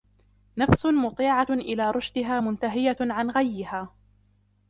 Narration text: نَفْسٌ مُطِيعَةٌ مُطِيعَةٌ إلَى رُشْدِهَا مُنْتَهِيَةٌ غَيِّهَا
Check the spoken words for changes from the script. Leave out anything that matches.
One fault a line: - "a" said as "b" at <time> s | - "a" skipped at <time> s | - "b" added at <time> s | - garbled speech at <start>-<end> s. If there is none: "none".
- "مُطِيعَةٌ" skipped at 1.5 s
- "عَنْ" added at 3.0 s